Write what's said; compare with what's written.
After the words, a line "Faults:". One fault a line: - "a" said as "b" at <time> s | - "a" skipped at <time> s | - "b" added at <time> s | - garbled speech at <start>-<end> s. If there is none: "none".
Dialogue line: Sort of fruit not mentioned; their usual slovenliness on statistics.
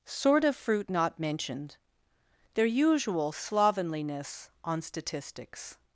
Sort of fruit not mentioned; their usual slovenliness on statistics.
Faults:
none